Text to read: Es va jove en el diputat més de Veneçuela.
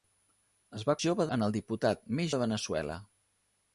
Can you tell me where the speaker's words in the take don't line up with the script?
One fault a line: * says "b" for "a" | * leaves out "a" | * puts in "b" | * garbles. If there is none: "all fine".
all fine